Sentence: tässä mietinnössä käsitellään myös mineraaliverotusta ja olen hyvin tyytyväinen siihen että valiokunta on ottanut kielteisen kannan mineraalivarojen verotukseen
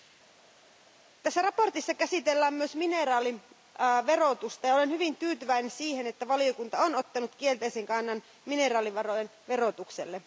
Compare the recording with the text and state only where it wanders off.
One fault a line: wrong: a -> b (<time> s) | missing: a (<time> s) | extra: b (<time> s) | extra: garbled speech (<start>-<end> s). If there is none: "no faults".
no faults